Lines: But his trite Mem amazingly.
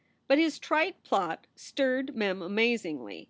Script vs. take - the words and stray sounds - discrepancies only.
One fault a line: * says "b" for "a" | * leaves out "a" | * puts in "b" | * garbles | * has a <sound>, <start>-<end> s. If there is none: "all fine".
* puts in "plot stirred"